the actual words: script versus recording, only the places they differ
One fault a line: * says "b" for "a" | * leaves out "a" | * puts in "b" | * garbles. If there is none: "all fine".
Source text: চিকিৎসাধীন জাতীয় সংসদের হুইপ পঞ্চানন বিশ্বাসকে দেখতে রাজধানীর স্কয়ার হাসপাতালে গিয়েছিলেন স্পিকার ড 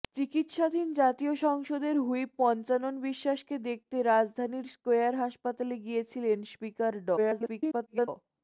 * garbles